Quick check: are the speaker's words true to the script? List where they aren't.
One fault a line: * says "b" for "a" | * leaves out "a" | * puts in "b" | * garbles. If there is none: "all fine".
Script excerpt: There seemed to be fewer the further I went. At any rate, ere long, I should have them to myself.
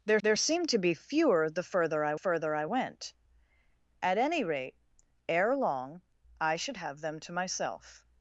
* puts in "there"
* puts in "further I"